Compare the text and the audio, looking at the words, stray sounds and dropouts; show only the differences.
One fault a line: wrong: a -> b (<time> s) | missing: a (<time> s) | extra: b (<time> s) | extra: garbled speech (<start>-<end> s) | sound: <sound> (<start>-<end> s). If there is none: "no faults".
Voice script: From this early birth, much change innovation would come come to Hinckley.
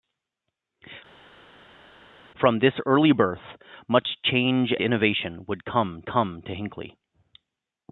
no faults